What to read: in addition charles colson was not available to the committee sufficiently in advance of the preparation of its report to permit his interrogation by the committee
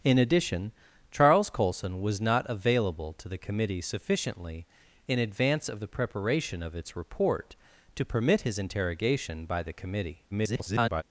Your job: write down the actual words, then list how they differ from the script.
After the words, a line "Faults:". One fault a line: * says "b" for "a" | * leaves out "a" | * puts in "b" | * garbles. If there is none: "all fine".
in addition charles colson was not available to the committee sufficiently in advance of the preparation of its report to permit his interrogation by the committee [garbled]
Faults:
* garbles